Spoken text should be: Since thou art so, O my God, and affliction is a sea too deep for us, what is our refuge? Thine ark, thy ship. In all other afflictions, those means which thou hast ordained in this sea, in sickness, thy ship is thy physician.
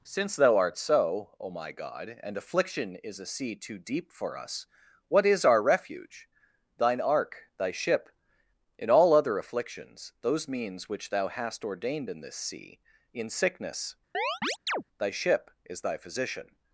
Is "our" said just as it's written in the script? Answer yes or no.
yes